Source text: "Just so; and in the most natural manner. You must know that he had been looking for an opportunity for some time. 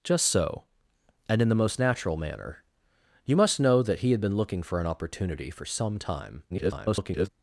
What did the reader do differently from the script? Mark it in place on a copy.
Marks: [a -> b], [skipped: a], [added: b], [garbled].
"Just so; and in the most natural manner. You must know that he had been looking for an opportunity for some time. [garbled]